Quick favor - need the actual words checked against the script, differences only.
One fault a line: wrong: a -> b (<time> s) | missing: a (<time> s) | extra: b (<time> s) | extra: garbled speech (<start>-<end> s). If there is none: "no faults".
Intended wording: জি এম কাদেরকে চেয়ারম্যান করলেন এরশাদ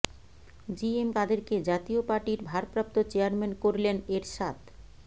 extra: জাতীয় পার্টির ভারপ্রাপ্ত (1.7 s)